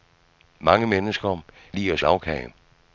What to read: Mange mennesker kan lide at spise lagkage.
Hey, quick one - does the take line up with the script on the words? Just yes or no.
no